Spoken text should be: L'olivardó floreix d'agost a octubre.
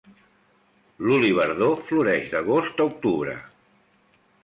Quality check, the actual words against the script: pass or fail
pass